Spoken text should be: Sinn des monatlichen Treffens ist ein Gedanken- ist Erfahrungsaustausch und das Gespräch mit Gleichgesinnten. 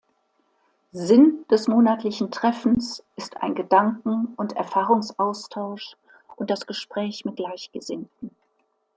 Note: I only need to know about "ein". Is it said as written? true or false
true